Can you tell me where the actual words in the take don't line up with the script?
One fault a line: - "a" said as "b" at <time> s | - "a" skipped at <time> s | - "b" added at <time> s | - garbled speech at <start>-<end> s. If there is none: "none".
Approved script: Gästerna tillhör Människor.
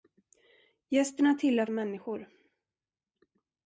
none